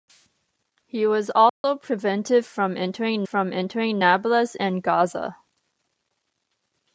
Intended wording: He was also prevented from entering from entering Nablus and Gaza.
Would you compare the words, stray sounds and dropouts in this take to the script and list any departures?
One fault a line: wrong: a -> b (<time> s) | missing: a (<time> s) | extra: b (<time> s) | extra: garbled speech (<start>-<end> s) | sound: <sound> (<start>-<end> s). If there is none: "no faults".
sound: dropout (1.5-1.6 s)